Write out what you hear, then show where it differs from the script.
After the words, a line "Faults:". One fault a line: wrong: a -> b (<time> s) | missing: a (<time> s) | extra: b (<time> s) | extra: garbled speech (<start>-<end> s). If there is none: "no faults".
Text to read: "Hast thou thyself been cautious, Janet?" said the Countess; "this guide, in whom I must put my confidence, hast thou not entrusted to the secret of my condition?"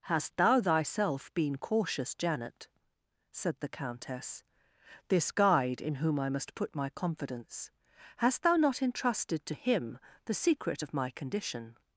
"Hast thou thyself been cautious, Janet?" said the Countess; "this guide, in whom I must put my confidence, hast thou not entrusted to him the secret of my condition?"
Faults:
extra: him (9.5 s)